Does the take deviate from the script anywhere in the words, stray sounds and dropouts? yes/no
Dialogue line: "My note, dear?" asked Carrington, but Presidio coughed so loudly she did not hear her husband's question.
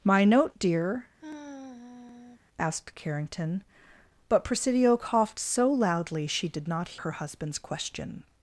yes